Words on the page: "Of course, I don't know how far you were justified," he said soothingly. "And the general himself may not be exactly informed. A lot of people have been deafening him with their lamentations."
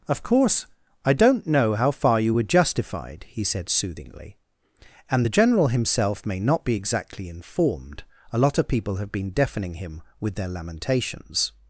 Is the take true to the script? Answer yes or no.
yes